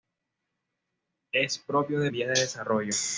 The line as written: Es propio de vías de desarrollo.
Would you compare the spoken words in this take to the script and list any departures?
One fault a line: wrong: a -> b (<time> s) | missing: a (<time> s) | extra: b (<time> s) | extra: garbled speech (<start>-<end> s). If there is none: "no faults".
no faults